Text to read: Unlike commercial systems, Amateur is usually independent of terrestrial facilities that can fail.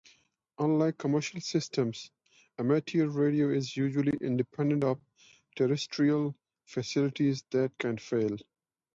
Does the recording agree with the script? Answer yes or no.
no